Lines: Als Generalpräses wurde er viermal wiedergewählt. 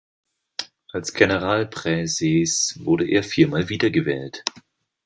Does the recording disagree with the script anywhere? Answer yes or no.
no